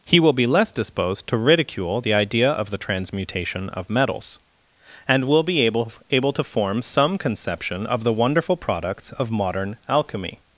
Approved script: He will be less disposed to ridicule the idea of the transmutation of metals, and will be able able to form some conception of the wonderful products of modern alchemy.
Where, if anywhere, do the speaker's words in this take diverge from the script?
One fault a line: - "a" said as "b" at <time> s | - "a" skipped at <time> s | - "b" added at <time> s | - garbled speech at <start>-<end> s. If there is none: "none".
none